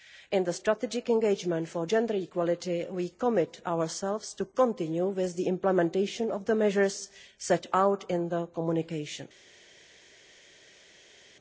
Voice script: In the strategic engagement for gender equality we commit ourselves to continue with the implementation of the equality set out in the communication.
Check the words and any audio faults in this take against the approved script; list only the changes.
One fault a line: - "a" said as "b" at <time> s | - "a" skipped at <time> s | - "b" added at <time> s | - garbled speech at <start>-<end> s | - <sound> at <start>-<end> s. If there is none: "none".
- "equality" said as "measures" at 6.5 s